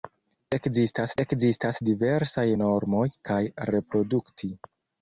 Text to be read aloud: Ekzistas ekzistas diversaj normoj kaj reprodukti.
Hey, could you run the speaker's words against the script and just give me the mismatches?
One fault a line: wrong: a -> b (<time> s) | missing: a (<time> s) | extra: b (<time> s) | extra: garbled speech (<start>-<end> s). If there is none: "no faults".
no faults